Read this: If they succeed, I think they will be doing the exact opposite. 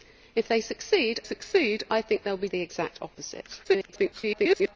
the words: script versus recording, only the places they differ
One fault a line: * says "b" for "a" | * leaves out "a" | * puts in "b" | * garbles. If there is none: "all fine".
* puts in "succeed"
* leaves out "doing"
* garbles